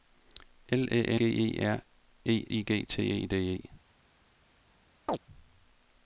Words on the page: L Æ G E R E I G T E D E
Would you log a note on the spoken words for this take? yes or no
no